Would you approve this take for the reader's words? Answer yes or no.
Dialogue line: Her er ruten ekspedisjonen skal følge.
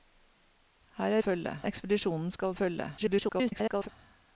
no